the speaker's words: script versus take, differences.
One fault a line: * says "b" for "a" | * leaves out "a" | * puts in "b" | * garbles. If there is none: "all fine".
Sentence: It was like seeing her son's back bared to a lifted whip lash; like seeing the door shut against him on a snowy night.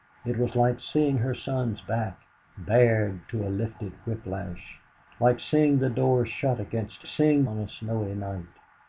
* says "seeing" for "him"